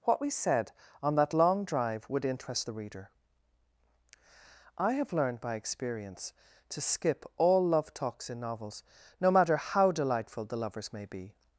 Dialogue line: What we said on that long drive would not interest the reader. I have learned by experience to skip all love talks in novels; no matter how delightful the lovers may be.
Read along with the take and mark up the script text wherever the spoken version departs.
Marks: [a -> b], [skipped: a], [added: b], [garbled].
What we said on that long drive would [skipped: not] interest the reader. I have learned by experience to skip all love talks in novels; no matter how delightful the lovers may be.